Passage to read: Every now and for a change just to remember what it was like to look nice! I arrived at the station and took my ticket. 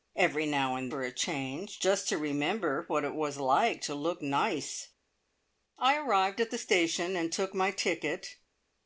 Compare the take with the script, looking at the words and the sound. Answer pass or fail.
pass